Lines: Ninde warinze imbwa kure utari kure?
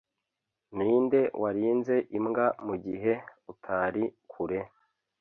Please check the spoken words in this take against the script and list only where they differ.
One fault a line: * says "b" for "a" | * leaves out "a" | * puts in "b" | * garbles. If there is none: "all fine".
* says "mugihe" for "kure"